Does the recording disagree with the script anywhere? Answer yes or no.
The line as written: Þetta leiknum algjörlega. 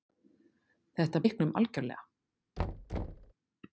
no